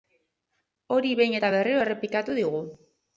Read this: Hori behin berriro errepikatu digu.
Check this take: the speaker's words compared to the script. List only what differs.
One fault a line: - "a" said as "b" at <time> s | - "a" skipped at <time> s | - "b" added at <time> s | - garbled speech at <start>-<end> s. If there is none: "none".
- "eta" added at 1.4 s